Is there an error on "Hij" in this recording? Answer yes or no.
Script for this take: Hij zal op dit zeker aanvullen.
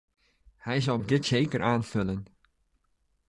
no